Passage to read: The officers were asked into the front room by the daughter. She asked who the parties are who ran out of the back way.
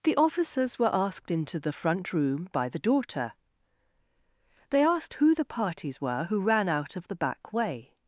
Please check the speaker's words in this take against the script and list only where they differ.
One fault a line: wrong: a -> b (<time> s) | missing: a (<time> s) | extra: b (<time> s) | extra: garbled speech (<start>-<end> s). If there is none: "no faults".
wrong: She -> They (4.7 s)
wrong: are -> were (6.0 s)